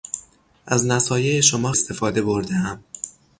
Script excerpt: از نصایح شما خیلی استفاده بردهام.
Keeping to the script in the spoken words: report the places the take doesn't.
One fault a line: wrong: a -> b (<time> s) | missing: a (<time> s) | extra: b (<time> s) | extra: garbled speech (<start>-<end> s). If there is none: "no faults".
missing: خیلی (1.7 s)